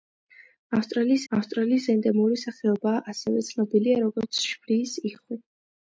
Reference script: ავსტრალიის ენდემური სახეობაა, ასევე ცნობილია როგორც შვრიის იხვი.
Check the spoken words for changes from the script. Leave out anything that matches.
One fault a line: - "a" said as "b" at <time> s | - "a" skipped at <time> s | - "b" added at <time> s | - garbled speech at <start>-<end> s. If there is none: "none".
- "ავსტრალიის" added at 1.3 s